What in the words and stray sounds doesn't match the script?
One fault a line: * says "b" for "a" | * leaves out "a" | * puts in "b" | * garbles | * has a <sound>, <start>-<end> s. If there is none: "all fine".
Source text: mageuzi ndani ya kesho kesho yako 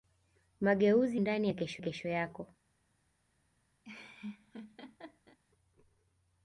* has a laugh, 3.8-5.4 s